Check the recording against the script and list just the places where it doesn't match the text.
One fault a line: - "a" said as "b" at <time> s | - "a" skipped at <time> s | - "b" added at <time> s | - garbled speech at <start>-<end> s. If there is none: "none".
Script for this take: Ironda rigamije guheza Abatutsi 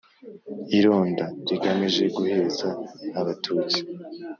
none